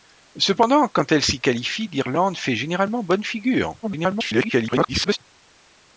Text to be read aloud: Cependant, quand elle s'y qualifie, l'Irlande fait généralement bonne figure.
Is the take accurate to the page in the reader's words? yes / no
no